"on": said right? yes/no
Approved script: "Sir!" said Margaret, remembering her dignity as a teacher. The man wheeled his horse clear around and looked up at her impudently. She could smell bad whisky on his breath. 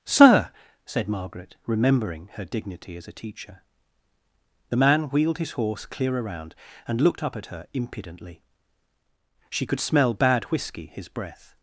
no